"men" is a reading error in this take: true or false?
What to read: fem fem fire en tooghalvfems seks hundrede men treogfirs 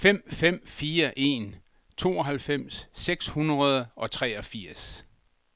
true